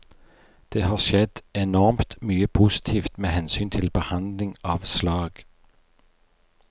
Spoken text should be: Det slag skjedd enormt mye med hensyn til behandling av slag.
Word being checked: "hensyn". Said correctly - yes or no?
yes